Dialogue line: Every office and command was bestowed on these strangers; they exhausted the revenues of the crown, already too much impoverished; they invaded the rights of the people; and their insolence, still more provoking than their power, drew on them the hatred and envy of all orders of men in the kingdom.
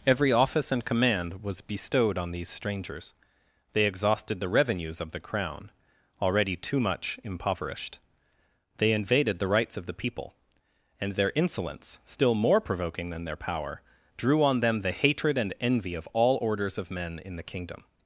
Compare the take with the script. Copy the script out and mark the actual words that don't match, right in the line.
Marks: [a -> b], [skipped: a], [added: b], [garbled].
Every office and command was bestowed on these strangers; they exhausted the revenues of the crown, already too much impoverished; they invaded the rights of the people; and their insolence, still more provoking than their power, drew on them the hatred and envy of all orders of men in the kingdom.